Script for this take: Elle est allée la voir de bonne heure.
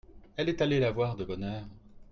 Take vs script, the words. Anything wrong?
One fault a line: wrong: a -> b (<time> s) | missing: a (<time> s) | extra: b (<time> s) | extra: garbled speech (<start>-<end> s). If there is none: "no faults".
no faults